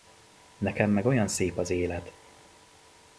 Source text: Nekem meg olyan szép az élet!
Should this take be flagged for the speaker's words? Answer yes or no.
no